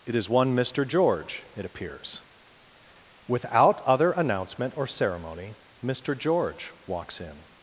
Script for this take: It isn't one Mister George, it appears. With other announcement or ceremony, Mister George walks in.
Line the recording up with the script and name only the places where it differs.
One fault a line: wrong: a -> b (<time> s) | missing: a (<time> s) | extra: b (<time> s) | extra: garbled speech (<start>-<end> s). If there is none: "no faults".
wrong: isn't -> is (0.1 s)
wrong: With -> Without (3.3 s)